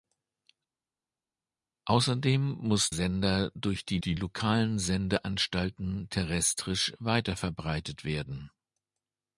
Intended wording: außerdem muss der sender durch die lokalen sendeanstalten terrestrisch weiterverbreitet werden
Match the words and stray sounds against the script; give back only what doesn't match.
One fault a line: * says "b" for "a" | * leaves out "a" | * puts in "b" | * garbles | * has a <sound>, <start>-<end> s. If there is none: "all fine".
* leaves out "der"
* puts in "die"